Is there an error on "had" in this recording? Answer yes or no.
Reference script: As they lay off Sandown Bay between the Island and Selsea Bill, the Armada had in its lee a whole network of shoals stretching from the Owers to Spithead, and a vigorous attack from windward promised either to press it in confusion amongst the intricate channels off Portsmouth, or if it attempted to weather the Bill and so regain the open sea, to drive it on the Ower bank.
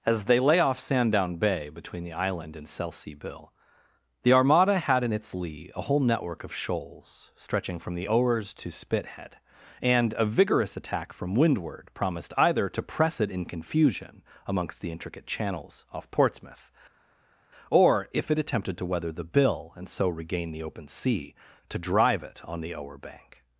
no